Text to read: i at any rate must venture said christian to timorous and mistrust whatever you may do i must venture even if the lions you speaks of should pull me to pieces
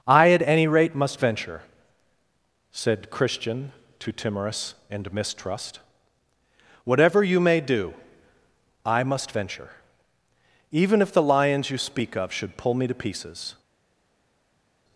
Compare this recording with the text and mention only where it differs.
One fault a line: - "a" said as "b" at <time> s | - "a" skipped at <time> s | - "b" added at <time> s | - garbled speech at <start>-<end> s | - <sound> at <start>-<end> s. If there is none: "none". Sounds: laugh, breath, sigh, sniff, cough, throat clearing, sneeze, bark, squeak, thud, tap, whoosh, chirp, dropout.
- "speaks" said as "speak" at 11.8 s